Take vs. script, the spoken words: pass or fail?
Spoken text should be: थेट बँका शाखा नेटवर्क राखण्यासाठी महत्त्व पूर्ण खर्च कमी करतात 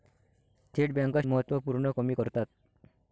fail